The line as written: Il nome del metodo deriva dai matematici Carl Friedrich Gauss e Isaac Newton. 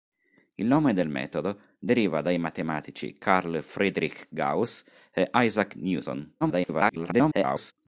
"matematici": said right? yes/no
yes